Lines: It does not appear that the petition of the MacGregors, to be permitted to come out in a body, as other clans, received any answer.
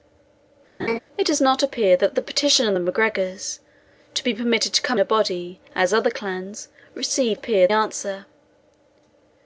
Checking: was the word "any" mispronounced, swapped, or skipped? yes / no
yes